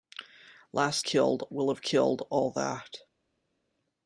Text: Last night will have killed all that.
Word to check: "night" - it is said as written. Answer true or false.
false